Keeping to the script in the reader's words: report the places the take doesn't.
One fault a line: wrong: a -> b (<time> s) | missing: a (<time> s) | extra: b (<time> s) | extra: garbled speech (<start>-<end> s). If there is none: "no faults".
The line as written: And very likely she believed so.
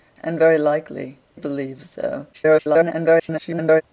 missing: she (1.2 s)
extra: garbled speech (2.3-3.8 s)